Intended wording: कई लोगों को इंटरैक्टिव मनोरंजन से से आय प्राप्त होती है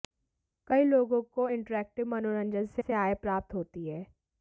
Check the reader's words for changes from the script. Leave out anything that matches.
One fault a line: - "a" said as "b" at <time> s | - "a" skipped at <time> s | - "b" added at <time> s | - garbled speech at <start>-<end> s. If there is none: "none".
none